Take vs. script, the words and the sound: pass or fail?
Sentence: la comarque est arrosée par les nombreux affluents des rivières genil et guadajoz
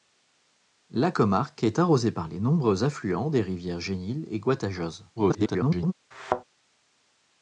fail